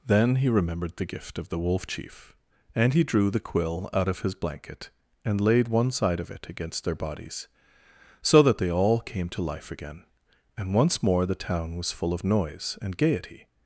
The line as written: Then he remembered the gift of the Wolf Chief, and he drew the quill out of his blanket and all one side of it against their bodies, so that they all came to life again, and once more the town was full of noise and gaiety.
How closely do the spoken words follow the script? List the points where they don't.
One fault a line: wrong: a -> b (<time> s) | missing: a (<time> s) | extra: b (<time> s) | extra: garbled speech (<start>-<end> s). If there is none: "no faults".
wrong: all -> laid (5.4 s)